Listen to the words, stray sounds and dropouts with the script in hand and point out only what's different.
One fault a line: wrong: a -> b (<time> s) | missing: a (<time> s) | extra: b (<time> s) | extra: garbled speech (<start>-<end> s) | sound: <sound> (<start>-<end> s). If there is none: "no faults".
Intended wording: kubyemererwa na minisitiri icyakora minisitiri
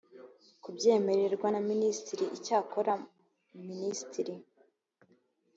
no faults